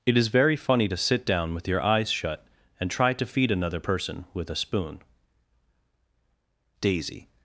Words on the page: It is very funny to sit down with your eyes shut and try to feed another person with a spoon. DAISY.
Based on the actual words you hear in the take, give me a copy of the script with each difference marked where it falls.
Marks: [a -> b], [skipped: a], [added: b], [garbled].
It is very funny to sit down with your eyes shut and try to feed another person with a spoon. DAISY.